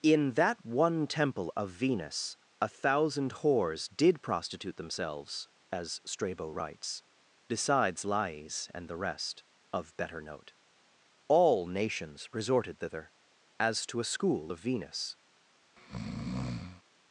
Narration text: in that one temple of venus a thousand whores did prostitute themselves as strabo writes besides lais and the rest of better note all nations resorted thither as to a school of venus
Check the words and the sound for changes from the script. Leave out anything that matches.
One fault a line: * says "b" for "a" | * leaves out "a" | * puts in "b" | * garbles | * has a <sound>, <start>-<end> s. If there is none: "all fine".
* has a breath, 15.8-16.8 s